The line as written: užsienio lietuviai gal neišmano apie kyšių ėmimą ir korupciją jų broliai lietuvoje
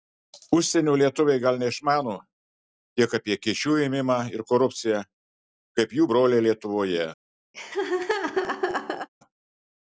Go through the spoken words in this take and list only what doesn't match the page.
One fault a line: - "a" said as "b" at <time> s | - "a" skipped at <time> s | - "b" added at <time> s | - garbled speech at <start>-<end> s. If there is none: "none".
- "tiek" added at 3.0 s
- "kaip" added at 5.8 s